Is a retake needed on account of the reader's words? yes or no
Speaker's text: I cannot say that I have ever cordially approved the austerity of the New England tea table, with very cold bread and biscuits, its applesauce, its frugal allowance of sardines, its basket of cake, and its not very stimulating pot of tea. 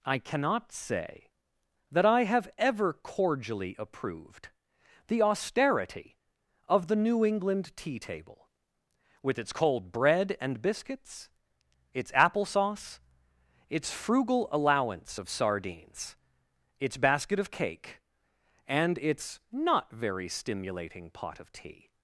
yes